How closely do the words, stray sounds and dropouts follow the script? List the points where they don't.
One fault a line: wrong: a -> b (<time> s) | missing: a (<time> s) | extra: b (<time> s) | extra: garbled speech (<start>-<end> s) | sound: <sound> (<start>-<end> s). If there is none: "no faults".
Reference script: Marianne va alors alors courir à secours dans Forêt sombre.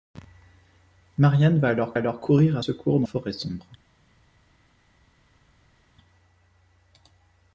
no faults